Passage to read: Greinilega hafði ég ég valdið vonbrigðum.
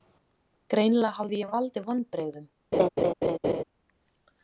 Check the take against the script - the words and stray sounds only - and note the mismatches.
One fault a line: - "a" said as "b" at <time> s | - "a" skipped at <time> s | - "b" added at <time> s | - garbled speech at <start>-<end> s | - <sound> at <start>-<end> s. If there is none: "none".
- laugh at 2.7-3.6 s